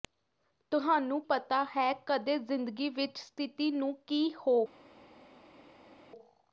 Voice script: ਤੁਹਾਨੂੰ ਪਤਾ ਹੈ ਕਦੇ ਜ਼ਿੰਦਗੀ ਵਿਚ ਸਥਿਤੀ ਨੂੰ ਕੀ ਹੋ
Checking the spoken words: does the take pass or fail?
pass